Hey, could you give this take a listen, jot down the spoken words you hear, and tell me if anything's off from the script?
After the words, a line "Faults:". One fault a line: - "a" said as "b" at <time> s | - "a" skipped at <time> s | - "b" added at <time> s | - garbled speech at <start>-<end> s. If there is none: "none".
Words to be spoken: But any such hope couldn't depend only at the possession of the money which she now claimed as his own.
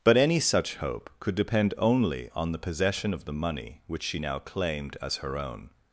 But any such hope could depend only on the possession of the money which she now claimed as her own.
Faults:
- "couldn't" said as "could" at 1.2 s
- "at" said as "on" at 2.3 s
- "his" said as "her" at 5.2 s